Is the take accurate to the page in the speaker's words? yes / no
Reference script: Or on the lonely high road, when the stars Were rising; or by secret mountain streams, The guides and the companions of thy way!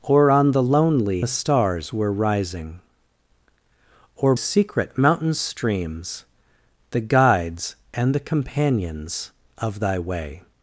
no